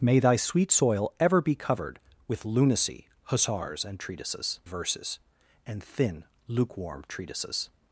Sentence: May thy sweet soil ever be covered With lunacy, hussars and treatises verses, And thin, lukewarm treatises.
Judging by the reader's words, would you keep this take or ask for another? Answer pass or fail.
pass